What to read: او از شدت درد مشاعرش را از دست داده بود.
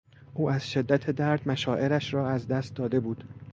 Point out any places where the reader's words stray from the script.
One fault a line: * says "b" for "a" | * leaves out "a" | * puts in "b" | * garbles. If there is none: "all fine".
all fine